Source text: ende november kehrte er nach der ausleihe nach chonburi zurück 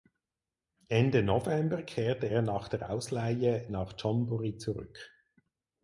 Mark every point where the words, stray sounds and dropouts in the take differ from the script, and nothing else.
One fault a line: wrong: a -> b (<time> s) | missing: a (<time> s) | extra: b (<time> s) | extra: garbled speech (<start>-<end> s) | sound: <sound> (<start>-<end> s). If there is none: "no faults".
no faults